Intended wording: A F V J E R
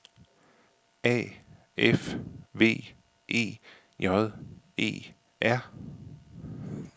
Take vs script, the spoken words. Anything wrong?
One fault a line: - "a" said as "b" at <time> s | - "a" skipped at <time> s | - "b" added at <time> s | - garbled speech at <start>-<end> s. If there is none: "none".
- "E" added at 3.3 s